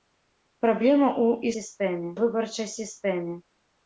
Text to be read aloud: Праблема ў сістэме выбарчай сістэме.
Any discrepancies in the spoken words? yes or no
no